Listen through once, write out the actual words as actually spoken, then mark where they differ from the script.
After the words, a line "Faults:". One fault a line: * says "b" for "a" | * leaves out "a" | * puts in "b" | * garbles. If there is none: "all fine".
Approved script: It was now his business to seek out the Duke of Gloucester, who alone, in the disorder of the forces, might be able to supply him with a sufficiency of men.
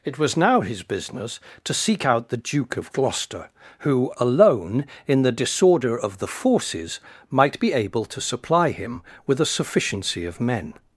It was now his business to seek out the Duke of Gloucester, who alone, in the disorder of the forces, might be able to supply him with a sufficiency of men.
Faults:
all fine